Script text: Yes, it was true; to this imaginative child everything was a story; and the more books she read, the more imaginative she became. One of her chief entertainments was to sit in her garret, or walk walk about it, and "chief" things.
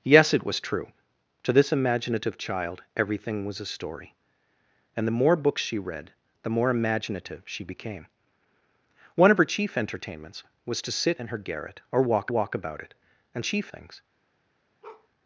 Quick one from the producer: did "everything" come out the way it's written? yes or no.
yes